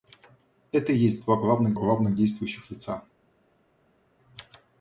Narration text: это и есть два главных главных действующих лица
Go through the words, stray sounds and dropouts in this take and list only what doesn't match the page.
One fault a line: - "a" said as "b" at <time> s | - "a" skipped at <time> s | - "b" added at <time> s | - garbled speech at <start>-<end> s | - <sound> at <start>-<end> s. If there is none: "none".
none